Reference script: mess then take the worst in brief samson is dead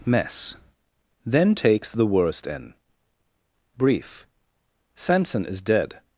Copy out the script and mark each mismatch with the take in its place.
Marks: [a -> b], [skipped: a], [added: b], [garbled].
mess then [take -> takes] the worst in brief samson is dead